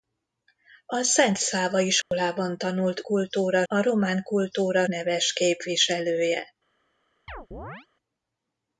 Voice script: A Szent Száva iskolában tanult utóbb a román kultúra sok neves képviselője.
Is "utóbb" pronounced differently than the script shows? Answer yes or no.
yes